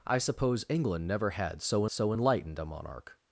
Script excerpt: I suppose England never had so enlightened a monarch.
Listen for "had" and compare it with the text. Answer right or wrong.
right